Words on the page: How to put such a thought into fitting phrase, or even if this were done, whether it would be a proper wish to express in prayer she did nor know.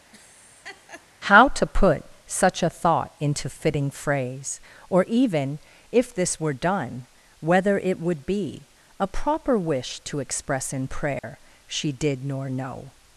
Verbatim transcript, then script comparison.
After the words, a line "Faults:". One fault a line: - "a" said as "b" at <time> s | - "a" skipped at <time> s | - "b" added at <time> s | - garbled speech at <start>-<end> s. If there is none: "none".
How to put such a thought into fitting phrase, or even if this were done, whether it would be a proper wish to express in prayer she did nor know.
Faults:
none